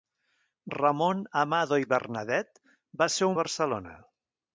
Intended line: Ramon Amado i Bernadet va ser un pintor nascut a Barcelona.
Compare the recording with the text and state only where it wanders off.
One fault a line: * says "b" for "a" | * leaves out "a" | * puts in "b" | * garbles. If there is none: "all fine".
* leaves out "un pintor nascut"